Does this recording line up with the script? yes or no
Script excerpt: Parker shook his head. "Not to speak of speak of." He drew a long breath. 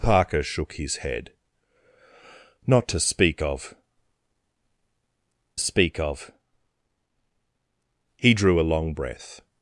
yes